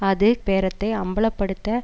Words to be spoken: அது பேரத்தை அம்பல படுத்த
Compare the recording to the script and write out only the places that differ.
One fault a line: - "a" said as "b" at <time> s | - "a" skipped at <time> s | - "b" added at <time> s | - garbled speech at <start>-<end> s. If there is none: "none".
none